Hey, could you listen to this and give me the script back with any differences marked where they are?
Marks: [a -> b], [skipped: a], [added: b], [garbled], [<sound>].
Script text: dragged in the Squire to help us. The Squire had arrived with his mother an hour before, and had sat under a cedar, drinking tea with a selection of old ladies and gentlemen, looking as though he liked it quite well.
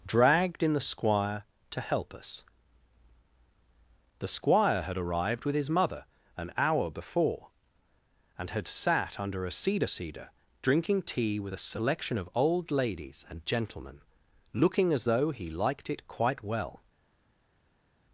dragged in the Squire to help us. The Squire had arrived with his mother an hour before, and had sat under a cedar, [added: cedar] drinking tea with a selection of old ladies and gentlemen, looking as though he liked it quite well.